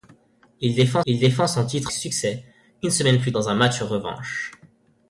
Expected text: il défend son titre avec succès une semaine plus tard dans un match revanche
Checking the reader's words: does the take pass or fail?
fail